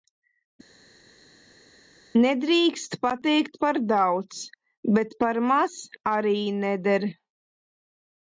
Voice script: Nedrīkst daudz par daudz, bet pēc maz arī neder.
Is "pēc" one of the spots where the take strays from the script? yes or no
yes